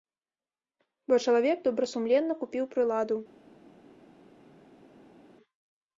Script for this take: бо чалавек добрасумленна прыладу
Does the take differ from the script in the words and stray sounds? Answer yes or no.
yes